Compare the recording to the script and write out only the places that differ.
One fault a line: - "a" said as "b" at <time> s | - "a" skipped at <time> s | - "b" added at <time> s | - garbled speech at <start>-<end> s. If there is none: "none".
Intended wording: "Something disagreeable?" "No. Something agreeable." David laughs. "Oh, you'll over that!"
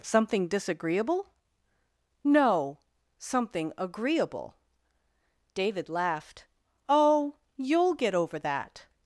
- "laughs" said as "laughed" at 5.9 s
- "get" added at 7.9 s